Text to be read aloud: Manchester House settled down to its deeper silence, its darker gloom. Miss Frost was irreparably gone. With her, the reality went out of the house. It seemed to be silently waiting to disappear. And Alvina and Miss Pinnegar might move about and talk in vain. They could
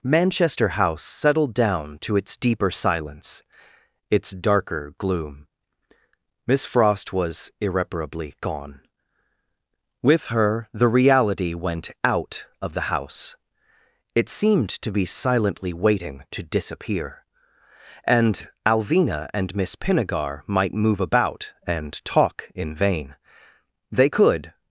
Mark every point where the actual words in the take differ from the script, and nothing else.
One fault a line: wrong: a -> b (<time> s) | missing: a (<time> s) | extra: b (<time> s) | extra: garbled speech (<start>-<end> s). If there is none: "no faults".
no faults